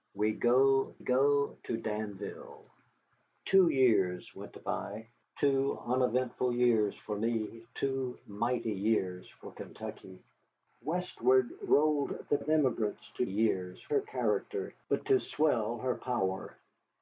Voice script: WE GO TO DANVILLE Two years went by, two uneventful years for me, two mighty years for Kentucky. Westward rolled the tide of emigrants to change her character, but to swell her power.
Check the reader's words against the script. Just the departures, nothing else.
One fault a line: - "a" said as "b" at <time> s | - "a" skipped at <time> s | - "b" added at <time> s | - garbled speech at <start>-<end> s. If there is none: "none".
- "GO" added at 1.0 s
- "tide" skipped at 12.4 s
- "change" said as "years" at 13.2 s